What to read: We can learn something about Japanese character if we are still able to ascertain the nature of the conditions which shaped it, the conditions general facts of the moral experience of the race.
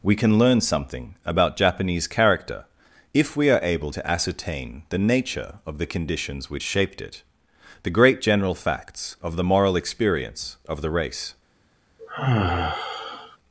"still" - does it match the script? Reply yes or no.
no